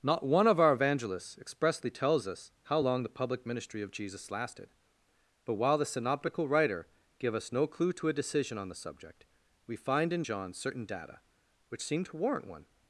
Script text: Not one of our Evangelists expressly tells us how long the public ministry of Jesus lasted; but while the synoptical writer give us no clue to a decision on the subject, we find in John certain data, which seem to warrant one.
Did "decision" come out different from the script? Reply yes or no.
no